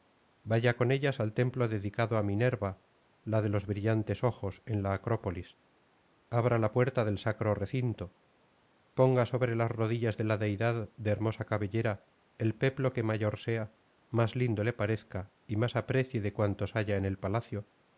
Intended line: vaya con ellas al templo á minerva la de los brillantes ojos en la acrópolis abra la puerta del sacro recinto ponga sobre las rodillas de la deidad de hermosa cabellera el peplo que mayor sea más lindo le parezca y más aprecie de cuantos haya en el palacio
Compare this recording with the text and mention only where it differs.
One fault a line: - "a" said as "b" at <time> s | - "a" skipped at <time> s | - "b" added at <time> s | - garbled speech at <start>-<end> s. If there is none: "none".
- "dedicado" added at 1.7 s